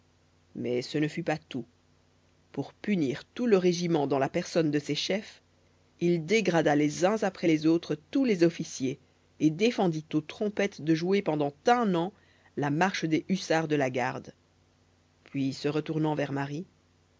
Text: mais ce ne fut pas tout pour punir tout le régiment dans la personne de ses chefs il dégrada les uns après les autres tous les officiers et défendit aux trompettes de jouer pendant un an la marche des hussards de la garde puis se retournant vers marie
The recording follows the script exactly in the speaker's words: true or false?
true